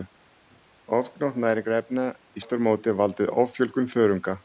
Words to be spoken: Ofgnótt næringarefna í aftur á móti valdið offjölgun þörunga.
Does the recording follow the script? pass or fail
pass